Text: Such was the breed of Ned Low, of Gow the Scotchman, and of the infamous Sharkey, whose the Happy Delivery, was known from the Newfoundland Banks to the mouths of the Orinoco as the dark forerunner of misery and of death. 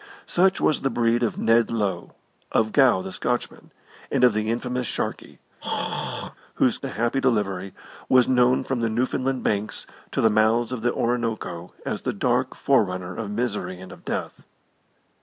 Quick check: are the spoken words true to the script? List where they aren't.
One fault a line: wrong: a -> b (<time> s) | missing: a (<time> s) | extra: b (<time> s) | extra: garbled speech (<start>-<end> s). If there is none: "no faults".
no faults